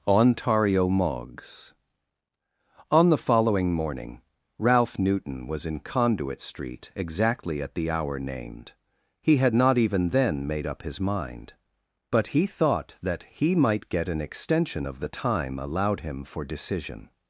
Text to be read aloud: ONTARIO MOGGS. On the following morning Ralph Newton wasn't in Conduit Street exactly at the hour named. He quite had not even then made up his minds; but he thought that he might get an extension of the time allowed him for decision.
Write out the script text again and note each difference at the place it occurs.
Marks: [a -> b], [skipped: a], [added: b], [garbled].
ONTARIO MOGGS. On the following morning Ralph Newton [wasn't -> was] in Conduit Street exactly at the hour named. He [skipped: quite] had not even then made up his [minds; -> mind] but he thought that he might get an extension of the time allowed him for decision.